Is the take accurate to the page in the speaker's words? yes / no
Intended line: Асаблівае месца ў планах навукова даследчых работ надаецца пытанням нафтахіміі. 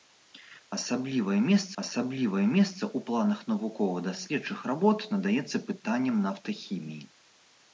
no